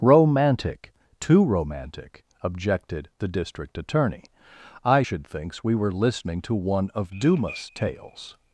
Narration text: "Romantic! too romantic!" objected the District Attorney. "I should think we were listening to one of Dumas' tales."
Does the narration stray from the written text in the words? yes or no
yes